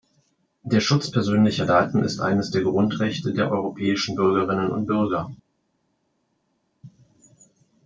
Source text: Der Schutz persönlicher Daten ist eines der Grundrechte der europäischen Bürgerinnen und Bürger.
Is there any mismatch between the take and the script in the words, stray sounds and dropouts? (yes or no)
no